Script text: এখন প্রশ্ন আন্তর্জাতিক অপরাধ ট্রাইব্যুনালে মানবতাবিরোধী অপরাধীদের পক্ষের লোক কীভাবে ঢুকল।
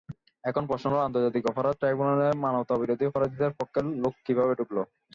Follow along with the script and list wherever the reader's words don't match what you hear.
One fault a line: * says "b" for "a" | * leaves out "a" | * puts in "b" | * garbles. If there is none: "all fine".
* puts in "হলো"